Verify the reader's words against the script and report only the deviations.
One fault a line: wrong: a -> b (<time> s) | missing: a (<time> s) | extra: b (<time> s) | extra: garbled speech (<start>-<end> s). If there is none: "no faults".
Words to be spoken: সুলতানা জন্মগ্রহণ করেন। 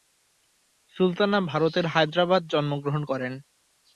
extra: ভারতের হায়দ্রাবাদ (1.5 s)